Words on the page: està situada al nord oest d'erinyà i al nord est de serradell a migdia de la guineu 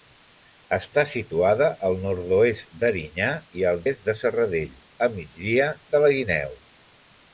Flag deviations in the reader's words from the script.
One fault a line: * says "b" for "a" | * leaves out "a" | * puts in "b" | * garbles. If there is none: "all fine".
* leaves out "nord"